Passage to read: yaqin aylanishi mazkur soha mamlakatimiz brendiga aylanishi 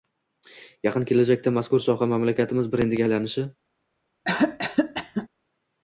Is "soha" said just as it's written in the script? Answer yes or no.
yes